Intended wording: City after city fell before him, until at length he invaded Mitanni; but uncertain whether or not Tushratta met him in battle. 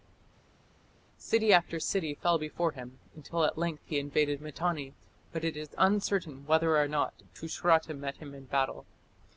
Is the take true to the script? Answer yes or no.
no